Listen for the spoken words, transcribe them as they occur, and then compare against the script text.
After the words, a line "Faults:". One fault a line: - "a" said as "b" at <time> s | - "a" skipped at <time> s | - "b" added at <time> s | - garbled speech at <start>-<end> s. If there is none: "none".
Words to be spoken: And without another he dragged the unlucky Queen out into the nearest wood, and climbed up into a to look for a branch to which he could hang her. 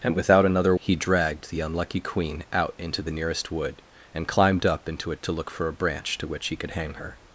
And without another he dragged the unlucky Queen out into the nearest wood, and climbed up into a to look for a branch to which he could hang her.
Faults:
none